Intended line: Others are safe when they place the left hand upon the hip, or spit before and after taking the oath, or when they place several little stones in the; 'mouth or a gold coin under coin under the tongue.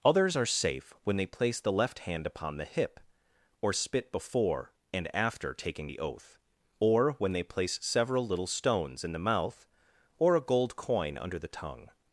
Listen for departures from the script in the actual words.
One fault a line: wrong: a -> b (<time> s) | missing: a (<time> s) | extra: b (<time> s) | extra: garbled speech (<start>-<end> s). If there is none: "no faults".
missing: coin under (11.4 s)